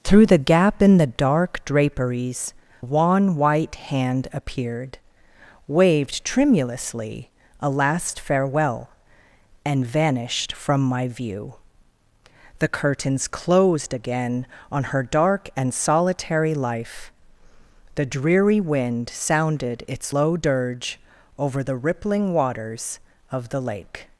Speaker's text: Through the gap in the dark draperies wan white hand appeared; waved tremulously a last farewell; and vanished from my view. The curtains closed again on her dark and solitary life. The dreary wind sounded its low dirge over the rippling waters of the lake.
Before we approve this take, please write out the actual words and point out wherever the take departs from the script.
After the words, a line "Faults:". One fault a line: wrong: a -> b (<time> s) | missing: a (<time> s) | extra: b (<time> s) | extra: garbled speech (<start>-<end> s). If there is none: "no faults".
Through the gap in the dark draperies wan white hand appeared; waved tremulously a last farewell; and vanished from my view. The curtains closed again on her dark and solitary life. The dreary wind sounded its low dirge over the rippling waters of the lake.
Faults:
no faults